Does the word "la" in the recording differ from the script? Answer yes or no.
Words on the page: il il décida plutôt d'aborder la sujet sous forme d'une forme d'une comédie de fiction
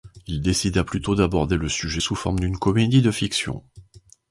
yes